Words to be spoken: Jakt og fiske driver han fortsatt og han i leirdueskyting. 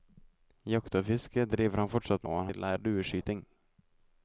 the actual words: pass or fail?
pass